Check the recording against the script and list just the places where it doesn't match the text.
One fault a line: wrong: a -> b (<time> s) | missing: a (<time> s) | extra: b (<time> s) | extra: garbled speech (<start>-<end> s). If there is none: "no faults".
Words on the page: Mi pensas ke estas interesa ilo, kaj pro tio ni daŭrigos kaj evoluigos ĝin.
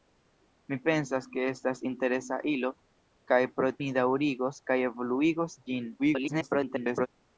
missing: tio (3.7 s)
extra: garbled speech (6.0-7.1 s)